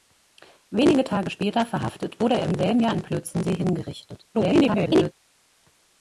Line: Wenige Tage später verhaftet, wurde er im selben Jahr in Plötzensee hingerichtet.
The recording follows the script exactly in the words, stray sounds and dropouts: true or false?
false